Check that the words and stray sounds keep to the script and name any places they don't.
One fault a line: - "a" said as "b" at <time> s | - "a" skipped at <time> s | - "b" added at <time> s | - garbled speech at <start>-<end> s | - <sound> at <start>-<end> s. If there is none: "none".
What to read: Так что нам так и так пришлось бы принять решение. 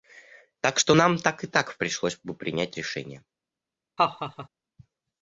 - laugh at 4.0-4.5 s